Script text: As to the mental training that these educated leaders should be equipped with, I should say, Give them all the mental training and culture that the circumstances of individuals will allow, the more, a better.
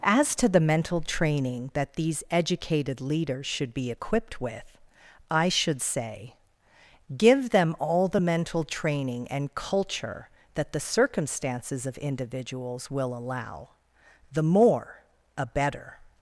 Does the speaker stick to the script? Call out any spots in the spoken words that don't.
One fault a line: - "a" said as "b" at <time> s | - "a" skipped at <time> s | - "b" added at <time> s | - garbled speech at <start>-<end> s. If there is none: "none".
none